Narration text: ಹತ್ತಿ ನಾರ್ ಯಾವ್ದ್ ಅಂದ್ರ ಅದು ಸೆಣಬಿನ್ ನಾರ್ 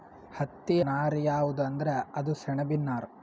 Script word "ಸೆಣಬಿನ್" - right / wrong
right